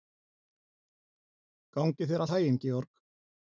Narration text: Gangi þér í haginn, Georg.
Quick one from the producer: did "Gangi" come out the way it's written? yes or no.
yes